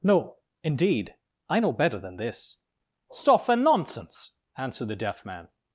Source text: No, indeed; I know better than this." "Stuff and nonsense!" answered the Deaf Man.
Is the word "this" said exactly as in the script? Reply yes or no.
yes